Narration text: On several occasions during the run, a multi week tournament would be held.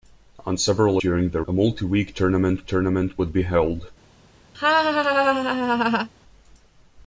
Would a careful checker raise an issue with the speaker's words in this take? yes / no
yes